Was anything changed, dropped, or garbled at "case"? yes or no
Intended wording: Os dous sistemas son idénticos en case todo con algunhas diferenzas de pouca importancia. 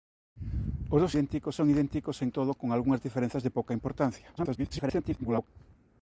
yes